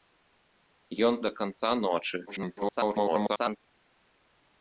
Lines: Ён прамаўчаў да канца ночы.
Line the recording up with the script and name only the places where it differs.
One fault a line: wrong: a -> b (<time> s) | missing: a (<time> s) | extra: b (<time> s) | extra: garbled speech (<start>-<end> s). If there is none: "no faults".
missing: прамаўчаў (1.1 s)
extra: garbled speech (2.3-3.6 s)